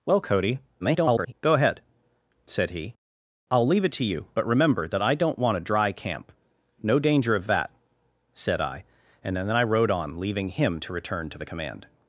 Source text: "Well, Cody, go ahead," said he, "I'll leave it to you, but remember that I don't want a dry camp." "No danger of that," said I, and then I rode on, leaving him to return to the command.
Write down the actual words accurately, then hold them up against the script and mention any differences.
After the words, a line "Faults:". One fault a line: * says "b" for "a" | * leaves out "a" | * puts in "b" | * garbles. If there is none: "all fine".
"Well, Cody, [garbled] go ahead," said he, "I'll leave it to you, but remember that I don't want a dry camp." "No danger of that," said I, and then I rode on, leaving him to return to the command.
Faults:
* garbles